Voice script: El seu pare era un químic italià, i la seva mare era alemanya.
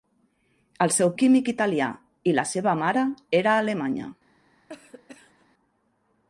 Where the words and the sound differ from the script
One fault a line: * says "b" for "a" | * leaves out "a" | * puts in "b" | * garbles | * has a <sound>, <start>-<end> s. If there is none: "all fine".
* leaves out "pare era un"
* has a cough, 4.7-5.5 s